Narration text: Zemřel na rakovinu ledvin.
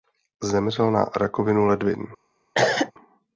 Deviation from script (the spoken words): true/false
false